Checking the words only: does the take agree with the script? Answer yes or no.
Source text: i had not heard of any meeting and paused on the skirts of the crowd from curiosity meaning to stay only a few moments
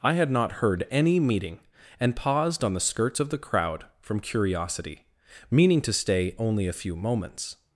no